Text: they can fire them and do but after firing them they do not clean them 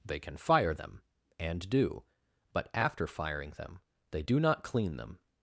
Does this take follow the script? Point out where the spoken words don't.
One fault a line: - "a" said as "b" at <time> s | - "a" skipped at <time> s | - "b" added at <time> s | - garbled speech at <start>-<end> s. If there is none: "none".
none